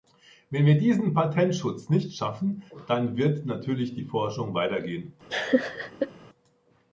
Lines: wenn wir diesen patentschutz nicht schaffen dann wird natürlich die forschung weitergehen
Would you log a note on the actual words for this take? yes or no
no